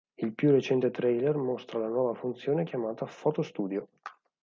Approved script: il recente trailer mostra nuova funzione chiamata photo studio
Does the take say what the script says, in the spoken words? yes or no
no